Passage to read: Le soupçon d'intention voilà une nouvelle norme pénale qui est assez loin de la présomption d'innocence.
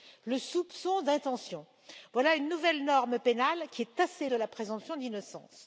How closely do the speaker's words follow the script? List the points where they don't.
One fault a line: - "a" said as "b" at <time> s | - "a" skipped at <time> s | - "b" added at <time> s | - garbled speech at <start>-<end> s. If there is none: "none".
- "loin" skipped at 4.3 s